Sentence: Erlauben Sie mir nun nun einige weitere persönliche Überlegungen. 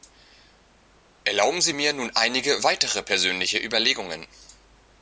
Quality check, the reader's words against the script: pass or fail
fail